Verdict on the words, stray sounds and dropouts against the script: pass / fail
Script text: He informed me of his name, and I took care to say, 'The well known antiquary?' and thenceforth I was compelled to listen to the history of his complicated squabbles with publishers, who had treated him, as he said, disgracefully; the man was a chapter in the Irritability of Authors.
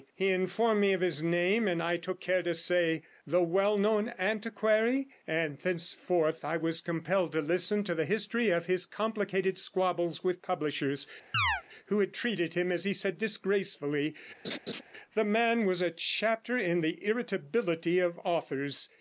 fail